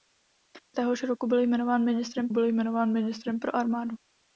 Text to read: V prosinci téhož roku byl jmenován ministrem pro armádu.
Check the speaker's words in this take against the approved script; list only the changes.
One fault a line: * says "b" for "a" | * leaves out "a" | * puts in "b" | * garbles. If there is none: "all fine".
* leaves out "prosinci"
* puts in "byl jmenován ministrem"